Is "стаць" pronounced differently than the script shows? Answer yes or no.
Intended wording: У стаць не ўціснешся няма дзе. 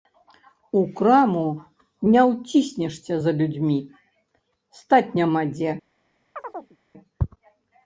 yes